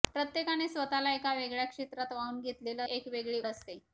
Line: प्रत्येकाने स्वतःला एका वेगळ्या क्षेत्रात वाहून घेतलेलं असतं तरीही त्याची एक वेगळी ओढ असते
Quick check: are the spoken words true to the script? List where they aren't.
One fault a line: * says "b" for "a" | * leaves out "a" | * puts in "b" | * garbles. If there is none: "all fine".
* leaves out "असतं तरीही त्याची"
* leaves out "ओढ"